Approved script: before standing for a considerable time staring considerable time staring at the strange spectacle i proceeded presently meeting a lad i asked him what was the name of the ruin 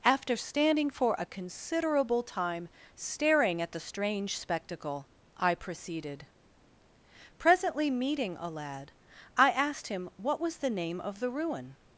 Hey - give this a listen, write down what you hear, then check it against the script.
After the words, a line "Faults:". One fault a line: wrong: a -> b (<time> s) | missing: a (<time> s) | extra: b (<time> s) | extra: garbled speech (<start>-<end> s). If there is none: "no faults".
after standing for a considerable time staring at the strange spectacle i proceeded presently meeting a lad i asked him what was the name of the ruin
Faults:
wrong: before -> after (0.0 s)
missing: considerable time staring (3.6 s)